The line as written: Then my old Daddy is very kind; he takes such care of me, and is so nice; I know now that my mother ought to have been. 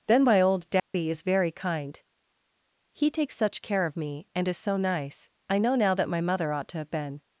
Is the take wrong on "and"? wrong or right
right